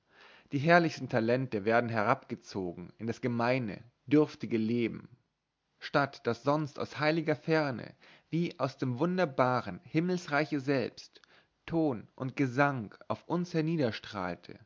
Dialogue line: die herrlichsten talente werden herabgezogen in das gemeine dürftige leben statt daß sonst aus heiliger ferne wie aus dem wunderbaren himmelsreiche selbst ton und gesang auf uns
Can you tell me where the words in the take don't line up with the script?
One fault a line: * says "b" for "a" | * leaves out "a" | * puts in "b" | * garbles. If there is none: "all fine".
all fine